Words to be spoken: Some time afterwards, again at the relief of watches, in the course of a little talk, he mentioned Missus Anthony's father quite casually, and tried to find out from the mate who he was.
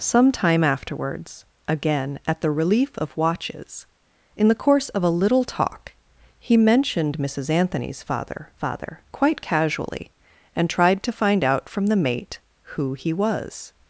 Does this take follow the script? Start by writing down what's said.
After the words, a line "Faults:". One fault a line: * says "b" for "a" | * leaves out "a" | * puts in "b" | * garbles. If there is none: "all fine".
Some time afterwards, again at the relief of watches, in the course of a little talk, he mentioned Missus Anthony's father father quite casually, and tried to find out from the mate who he was.
Faults:
* puts in "father"